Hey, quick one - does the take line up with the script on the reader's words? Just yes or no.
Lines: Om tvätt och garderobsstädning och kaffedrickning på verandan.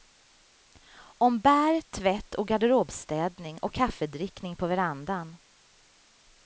no